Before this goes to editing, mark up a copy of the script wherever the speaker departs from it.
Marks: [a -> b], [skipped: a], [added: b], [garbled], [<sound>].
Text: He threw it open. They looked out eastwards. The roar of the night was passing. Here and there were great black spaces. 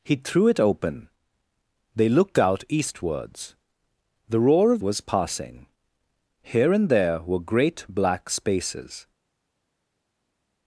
He threw it open. They looked out eastwards. The roar of [skipped: the night] was passing. Here and there were great black spaces.